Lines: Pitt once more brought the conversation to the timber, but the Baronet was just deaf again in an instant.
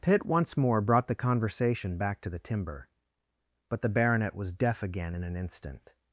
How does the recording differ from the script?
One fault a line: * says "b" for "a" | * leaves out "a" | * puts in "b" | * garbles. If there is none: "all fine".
* puts in "back"
* leaves out "just"